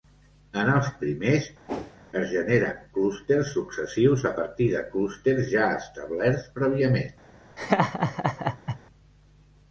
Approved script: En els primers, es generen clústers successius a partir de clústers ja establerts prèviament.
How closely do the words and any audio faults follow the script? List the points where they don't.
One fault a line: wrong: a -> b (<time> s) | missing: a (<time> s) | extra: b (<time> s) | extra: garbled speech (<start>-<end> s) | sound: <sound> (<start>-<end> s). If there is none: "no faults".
sound: whoosh (1.7-2.0 s)
sound: laugh (7.6-8.8 s)